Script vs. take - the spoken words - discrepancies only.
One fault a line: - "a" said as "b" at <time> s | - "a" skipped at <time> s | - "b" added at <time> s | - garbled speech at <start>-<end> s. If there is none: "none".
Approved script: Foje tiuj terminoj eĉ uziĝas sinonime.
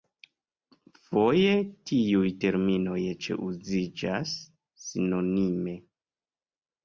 none